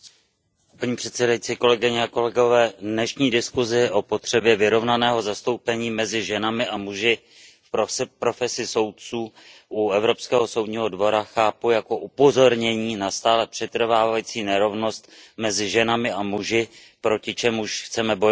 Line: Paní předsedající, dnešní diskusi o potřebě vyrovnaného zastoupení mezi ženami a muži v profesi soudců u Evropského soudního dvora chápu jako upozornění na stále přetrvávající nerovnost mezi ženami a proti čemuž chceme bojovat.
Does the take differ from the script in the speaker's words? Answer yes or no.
yes